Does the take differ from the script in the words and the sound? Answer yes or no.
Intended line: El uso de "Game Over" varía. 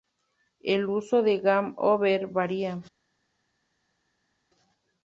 no